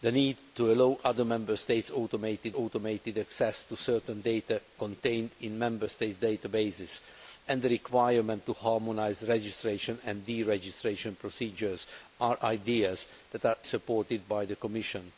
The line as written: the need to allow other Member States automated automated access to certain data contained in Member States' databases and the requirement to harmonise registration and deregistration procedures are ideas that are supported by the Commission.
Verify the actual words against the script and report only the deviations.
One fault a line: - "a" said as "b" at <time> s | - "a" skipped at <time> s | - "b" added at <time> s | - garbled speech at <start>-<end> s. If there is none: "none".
none